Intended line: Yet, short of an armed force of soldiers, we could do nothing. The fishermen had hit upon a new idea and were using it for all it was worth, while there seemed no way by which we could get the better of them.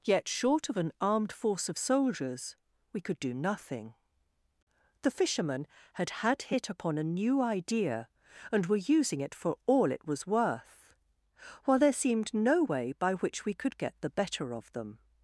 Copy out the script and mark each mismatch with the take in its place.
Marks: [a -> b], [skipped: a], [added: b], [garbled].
Yet, short of an armed force of soldiers, we could do nothing. The fishermen had [added: had] hit upon a new idea and were using it for all it was worth, while there seemed no way by which we could get the better of them.